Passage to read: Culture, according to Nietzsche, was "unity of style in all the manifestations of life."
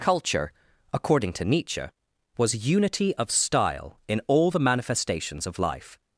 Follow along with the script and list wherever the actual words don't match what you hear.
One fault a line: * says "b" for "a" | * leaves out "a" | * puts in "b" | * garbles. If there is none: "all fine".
all fine